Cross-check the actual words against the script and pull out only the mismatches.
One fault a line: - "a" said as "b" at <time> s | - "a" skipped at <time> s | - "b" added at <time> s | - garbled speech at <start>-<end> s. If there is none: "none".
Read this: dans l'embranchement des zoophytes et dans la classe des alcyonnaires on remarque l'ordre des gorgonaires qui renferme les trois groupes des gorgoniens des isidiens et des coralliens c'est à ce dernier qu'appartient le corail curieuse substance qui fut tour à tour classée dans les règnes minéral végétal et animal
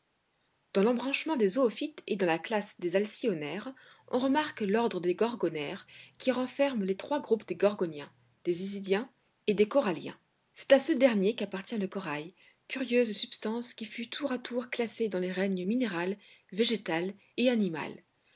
none